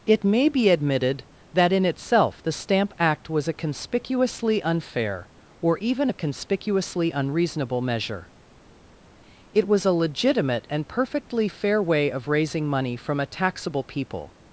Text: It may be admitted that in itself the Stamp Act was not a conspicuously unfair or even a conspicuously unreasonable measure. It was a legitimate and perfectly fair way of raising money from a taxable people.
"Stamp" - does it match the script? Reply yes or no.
yes